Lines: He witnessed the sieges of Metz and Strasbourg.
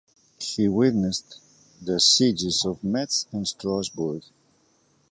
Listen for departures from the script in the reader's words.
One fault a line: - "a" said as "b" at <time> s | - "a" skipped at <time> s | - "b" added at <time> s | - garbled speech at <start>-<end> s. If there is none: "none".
none